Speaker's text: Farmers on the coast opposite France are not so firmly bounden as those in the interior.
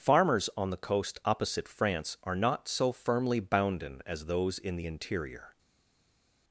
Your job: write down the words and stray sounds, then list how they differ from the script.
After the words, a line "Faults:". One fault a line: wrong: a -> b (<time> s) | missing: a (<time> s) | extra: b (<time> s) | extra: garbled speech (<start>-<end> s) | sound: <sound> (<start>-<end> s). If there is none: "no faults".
Farmers on the coast opposite France are not so firmly bounden as those in the interior.
Faults:
no faults